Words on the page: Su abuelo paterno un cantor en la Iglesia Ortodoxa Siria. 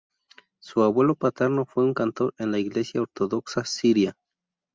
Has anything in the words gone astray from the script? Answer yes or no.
yes